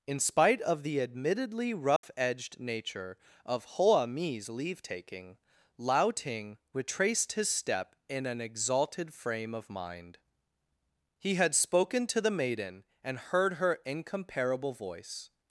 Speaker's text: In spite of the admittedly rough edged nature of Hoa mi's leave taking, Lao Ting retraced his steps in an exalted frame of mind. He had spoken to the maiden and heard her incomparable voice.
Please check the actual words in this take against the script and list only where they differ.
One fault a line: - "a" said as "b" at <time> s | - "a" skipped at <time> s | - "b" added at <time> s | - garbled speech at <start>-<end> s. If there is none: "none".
- "steps" said as "step" at 7.5 s